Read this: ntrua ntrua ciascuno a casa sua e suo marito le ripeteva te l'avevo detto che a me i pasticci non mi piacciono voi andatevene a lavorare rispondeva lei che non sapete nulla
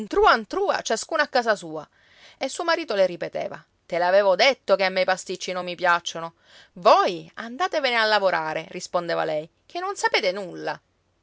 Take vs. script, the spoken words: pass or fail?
pass